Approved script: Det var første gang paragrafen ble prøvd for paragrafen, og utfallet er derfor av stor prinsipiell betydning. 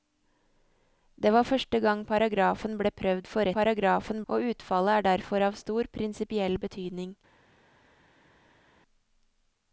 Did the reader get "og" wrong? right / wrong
right